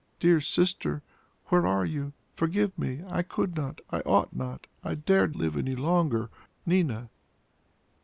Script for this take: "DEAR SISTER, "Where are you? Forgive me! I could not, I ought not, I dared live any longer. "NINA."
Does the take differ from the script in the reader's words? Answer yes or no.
no